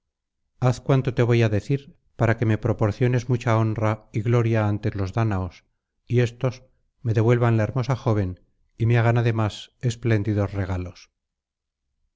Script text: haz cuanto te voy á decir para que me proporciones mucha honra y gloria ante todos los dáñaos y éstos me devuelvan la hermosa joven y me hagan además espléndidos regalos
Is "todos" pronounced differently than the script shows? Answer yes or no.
yes